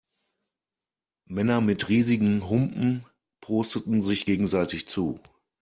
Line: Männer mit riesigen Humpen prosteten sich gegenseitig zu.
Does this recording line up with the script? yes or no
yes